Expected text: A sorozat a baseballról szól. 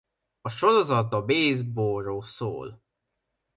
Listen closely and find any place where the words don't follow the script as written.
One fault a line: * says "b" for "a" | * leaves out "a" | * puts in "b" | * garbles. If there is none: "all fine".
all fine